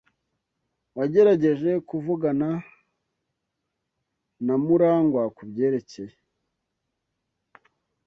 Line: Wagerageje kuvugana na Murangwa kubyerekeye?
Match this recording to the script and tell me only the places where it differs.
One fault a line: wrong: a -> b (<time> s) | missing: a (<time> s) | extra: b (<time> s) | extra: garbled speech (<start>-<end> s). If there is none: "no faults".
no faults